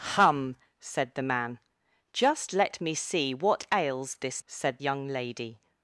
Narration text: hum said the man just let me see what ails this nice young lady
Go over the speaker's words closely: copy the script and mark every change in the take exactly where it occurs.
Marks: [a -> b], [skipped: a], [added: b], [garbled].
hum said the man just let me see what ails this [nice -> said] young lady